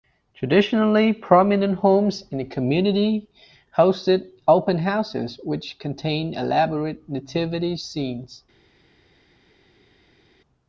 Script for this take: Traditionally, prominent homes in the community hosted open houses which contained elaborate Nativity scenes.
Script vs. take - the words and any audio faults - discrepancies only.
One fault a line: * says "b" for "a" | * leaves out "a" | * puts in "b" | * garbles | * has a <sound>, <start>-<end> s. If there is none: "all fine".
all fine